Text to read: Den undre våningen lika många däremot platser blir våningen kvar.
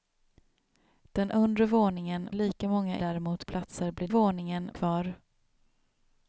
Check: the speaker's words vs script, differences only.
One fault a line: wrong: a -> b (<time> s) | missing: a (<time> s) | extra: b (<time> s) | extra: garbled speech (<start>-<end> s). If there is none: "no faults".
no faults